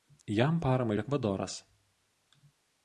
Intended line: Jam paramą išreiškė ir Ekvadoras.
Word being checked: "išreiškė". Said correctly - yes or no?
no